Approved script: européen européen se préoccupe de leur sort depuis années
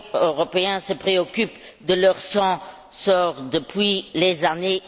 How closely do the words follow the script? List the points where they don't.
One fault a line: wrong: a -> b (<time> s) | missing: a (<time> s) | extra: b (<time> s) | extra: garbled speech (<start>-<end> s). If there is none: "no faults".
missing: européen (0.8 s)
extra: les (4.1 s)